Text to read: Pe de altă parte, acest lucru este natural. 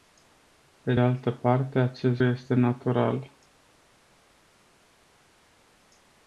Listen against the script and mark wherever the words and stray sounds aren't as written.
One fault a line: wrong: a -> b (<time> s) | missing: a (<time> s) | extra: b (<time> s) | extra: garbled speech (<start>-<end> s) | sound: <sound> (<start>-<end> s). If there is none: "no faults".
missing: de (0.9 s)
missing: lucru (2.2 s)